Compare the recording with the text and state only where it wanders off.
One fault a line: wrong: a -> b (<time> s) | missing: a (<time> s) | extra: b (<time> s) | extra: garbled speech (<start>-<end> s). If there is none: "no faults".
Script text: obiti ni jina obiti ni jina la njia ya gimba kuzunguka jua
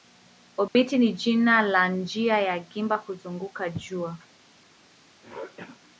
missing: obiti ni jina (1.6 s)